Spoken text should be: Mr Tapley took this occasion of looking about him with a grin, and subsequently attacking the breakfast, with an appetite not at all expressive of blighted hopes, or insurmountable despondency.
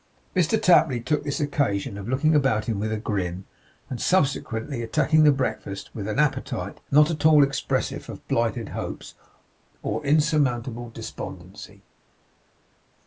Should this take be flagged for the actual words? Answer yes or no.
no